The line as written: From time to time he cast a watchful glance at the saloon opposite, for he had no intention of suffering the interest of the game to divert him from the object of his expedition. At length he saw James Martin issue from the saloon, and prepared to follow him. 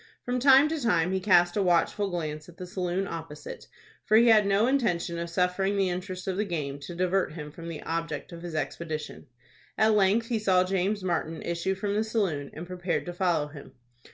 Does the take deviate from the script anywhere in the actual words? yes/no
no